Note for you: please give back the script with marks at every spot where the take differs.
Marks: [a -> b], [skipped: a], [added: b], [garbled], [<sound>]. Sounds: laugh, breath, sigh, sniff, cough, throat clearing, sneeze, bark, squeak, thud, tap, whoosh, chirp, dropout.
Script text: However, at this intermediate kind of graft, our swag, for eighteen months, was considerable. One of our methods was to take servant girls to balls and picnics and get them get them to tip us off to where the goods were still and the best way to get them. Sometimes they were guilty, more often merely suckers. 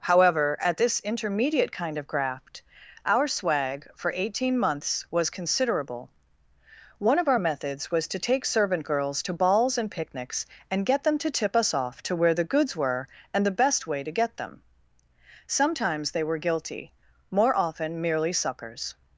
However, at this intermediate kind of graft, our swag, for eighteen months, was considerable. One of our methods was to take servant girls to balls and picnics and get them [skipped: get them] to tip us off to where the goods were [skipped: still] and the best way to get them. Sometimes they were guilty, more often merely suckers.